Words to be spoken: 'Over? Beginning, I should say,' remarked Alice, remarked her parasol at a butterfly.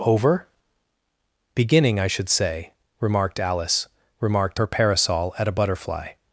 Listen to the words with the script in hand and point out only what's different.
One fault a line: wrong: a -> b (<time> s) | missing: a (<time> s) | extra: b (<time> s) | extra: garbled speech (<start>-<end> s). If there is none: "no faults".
no faults